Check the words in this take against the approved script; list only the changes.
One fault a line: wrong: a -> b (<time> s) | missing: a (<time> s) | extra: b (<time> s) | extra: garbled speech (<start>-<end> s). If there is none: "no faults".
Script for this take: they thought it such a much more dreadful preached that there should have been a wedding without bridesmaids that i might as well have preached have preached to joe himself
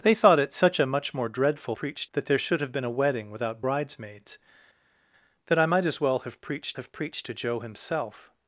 no faults